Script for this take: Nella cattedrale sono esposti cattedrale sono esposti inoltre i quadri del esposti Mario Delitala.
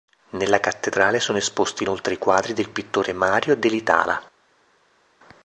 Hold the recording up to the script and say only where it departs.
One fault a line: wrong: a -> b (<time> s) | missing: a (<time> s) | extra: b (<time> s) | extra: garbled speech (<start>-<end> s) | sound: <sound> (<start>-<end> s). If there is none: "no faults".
missing: cattedrale sono esposti (1.8 s)
wrong: esposti -> pittore (2.7 s)